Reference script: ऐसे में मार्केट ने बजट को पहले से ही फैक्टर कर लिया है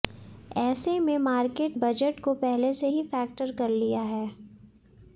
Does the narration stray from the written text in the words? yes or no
yes